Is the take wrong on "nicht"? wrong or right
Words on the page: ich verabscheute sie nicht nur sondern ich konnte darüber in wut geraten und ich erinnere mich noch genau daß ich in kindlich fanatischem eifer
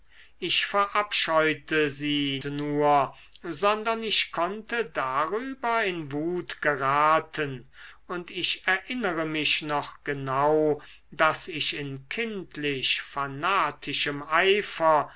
wrong